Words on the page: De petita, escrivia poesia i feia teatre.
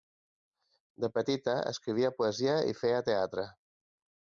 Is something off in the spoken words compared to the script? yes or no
no